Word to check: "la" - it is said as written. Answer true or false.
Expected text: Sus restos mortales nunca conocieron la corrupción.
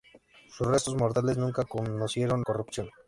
false